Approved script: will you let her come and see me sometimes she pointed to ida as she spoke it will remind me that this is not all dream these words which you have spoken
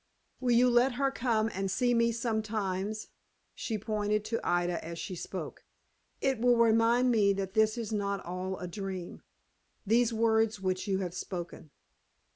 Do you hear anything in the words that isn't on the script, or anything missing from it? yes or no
yes